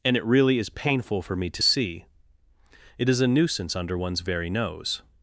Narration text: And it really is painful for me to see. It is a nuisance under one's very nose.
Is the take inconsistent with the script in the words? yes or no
no